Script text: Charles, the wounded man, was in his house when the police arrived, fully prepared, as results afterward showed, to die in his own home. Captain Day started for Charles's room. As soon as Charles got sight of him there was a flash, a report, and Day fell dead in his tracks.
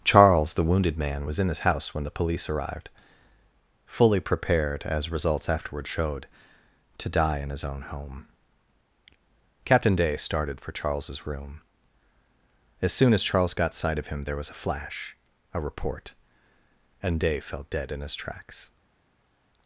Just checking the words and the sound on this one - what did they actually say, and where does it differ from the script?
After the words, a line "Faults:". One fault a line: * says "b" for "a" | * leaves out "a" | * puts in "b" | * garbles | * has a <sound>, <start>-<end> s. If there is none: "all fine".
Charles, the wounded man, was in his house when the police arrived, fully prepared, as results afterward showed, to die in his own home. Captain Day started for Charles's room. As soon as Charles got sight of him there was a flash, a report, and Day fell dead in his tracks.
Faults:
all fine